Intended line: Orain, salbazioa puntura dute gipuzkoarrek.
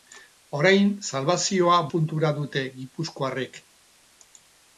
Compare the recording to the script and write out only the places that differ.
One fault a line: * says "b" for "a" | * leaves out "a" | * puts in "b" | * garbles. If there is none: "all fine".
all fine